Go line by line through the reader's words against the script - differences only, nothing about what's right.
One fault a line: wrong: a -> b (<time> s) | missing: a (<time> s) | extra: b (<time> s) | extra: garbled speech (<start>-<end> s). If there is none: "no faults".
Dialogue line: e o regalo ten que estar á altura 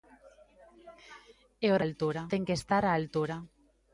wrong: regalo -> altura (1.8 s)